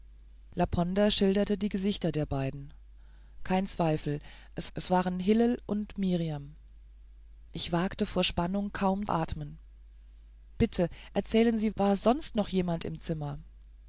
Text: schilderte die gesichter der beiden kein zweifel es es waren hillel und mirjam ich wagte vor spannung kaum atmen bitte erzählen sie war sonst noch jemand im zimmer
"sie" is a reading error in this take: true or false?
false